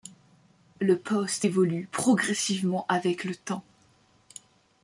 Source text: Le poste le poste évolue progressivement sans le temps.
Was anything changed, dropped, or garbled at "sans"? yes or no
yes